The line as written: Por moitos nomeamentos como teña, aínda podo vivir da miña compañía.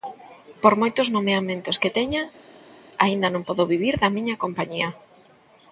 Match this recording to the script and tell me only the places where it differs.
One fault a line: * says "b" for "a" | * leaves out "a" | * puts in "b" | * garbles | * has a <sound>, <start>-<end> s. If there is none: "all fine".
* says "que" for "como"
* puts in "non"